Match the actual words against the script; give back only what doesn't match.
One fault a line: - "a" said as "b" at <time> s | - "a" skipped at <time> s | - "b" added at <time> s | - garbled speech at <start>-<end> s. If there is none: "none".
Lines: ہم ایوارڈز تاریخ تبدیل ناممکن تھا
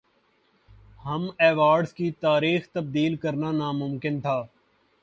- "کی" added at 1.9 s
- "کرنا" added at 3.2 s